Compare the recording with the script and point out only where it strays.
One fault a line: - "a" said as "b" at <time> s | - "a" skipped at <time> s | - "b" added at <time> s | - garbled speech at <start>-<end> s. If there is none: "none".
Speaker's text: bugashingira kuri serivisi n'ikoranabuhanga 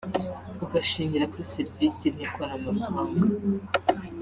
none